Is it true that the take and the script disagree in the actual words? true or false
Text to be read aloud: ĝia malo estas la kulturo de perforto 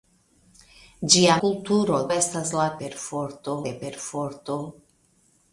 true